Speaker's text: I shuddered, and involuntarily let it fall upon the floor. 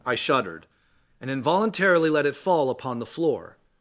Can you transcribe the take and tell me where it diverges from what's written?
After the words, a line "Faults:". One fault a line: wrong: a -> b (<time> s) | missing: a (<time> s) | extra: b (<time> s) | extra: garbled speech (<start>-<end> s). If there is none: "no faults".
I shuddered, and involuntarily let it fall upon the floor.
Faults:
no faults